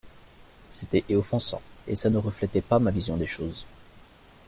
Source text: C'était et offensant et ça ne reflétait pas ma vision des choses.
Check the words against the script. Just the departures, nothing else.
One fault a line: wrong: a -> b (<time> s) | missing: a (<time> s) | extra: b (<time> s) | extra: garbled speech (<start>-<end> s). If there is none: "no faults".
no faults